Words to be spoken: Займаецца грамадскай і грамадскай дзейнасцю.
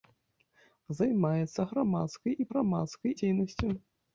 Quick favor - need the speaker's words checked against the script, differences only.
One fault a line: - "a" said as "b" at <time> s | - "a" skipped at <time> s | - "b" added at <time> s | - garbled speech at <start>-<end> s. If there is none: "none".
none